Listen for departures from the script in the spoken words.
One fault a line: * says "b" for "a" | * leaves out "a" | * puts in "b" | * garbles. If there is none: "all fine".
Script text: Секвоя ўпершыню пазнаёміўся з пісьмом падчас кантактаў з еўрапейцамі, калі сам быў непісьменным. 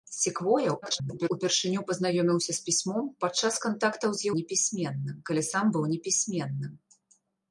* garbles
* says "непісьменным" for "еўрапейцамі"